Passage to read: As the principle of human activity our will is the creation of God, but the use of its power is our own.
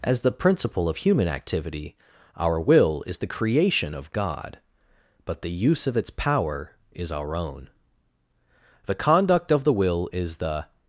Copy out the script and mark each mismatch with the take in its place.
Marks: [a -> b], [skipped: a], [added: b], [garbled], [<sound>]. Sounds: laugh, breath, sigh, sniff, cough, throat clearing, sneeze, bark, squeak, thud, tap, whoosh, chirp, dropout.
As the principle of human activity our will is the creation of God, but the use of its power is our own. [added: The conduct of the will is the]